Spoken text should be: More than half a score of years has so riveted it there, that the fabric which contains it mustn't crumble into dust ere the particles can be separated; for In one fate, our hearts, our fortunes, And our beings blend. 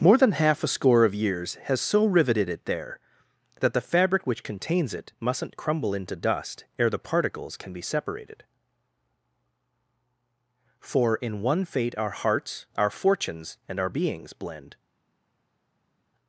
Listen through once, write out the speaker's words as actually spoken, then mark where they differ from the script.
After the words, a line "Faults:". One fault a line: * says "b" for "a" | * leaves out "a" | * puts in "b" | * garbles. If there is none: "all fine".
More than half a score of years has so riveted it there, that the fabric which contains it mustn't crumble into dust ere the particles can be separated; for In one fate, our hearts, our fortunes, And our beings blend.
Faults:
all fine